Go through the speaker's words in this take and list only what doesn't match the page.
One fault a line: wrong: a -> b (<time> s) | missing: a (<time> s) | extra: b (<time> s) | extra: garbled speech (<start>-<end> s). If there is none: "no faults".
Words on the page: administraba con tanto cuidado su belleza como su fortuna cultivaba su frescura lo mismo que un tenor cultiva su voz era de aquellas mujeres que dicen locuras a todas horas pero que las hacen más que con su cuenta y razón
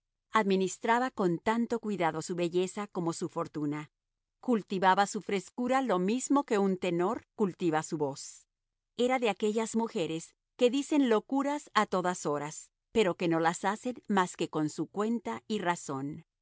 extra: no (13.3 s)